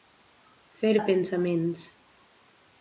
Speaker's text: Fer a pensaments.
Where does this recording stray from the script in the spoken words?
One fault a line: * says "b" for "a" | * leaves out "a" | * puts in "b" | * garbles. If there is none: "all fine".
all fine